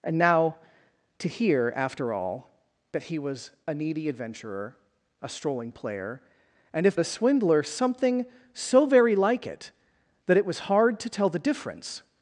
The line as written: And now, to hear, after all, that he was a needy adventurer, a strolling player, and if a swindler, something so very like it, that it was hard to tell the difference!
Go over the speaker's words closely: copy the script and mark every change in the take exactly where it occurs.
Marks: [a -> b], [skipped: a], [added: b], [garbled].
And now, to hear, after all, that he was a needy adventurer, a strolling player, and if a swindler, something so very like it, that it was hard to tell the difference!